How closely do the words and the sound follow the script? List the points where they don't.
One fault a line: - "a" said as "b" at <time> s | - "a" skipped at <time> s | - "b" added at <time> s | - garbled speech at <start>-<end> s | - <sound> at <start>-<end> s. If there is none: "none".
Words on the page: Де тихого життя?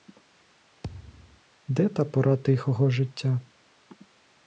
- thud at 0.8-1.4 s
- "та пора" added at 1.9 s